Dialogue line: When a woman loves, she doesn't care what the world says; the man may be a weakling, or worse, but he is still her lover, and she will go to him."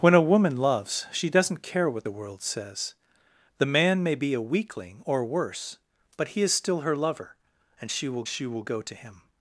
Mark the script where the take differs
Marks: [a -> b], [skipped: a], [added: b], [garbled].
When a woman loves, she doesn't care what the world says; the man may be a weakling, or worse, but he is still her lover, and she will [added: she will] go to him."